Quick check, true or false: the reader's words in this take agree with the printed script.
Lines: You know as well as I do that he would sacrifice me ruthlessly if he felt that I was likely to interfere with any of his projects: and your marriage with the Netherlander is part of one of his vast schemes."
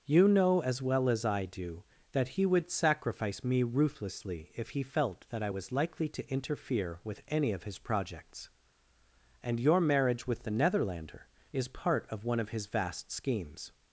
true